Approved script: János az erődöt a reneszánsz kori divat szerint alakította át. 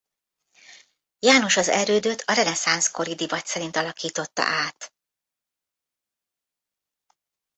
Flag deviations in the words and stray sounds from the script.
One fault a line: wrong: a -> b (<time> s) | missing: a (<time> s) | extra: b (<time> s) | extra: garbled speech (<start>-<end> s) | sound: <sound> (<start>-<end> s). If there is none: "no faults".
no faults